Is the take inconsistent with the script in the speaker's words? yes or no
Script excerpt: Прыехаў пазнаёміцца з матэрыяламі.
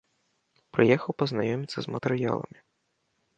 no